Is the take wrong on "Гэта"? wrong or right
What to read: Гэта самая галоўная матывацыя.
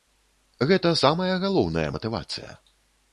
right